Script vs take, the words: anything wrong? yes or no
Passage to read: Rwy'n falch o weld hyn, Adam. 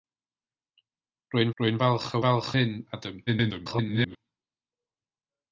yes